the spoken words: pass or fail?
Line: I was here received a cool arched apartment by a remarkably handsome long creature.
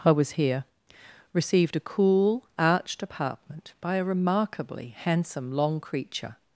pass